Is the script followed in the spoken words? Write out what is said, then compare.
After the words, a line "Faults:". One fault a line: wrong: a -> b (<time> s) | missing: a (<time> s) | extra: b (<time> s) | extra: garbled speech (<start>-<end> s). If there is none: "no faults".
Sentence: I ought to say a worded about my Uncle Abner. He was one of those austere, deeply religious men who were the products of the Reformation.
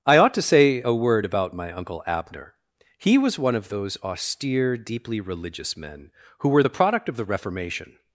I ought to say a word about my Uncle Abner. He was one of those austere, deeply religious men who were the product of the Reformation.
Faults:
wrong: worded -> word (0.9 s)
wrong: products -> product (6.7 s)